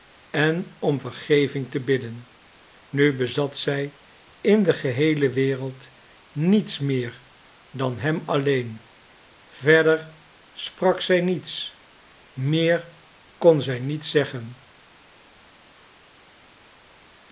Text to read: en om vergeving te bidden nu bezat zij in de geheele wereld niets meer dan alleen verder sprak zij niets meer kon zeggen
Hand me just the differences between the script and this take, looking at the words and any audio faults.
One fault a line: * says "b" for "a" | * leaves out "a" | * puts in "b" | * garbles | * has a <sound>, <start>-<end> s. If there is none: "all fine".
* puts in "hem"
* puts in "zij niet"